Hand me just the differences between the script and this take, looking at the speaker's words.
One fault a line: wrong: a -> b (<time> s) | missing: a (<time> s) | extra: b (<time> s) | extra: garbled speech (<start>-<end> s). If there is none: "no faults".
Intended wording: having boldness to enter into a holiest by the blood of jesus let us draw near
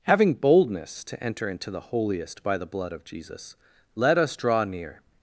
wrong: a -> the (1.7 s)